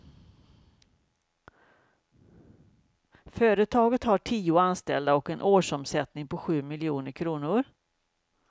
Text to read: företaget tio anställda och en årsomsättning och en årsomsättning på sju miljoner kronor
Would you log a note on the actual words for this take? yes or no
yes